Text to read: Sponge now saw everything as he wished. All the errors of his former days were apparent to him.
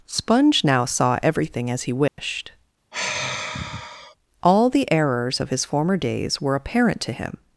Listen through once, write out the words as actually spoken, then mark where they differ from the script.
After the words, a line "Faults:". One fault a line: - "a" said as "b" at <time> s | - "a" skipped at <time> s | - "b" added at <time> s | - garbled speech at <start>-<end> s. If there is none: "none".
Sponge now saw everything as he wished. All the errors of his former days were apparent to him.
Faults:
none